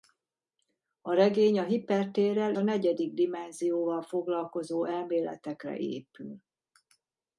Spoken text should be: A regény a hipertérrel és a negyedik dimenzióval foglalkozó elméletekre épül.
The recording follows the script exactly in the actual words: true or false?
false